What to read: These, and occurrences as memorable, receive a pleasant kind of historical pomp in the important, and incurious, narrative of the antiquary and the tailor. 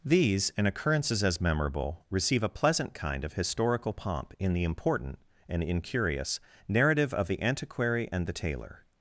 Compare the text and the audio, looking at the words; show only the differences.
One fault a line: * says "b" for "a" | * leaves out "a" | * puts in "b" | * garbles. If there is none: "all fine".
all fine